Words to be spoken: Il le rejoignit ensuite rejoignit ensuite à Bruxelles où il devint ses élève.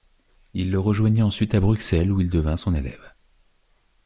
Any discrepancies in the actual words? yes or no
yes